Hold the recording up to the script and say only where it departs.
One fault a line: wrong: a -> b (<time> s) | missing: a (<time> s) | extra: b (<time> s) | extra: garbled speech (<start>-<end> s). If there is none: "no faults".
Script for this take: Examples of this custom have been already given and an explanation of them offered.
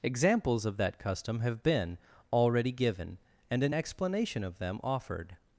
wrong: this -> that (0.8 s)